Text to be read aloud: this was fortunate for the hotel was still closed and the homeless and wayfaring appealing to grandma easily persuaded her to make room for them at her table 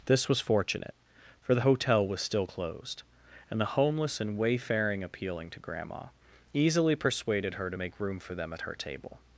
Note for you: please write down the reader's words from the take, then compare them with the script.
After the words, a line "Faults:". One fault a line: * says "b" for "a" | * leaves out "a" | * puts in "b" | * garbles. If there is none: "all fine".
this was fortunate for the hotel was still closed and the homeless and wayfaring appealing to grandma easily persuaded her to make room for them at her table
Faults:
all fine